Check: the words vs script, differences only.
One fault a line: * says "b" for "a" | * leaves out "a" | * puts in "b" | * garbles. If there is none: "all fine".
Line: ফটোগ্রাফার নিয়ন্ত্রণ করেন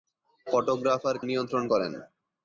all fine